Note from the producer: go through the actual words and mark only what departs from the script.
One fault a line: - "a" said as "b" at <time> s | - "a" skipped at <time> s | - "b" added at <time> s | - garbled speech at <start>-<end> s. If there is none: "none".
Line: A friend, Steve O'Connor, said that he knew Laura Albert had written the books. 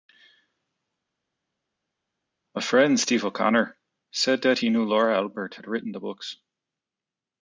none